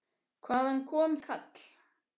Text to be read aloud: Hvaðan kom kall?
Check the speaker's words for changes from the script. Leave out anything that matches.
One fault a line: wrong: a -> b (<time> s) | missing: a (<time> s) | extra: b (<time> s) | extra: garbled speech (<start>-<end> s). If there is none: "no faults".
no faults